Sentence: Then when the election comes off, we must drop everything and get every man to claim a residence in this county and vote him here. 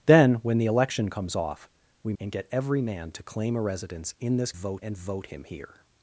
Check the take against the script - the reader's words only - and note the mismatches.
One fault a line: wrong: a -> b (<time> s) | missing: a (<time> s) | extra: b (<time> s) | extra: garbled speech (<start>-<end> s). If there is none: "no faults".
missing: must drop everything (2.1 s)
wrong: county -> vote (4.5 s)